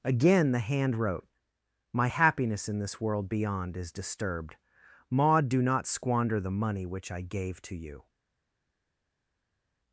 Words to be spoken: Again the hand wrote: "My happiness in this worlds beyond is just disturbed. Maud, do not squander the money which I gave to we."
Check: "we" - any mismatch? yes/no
yes